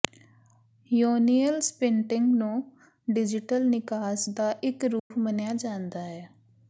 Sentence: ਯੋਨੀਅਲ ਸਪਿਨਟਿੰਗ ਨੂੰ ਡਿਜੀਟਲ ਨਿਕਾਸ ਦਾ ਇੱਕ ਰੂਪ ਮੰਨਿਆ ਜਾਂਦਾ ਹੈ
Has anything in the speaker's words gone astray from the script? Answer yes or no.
no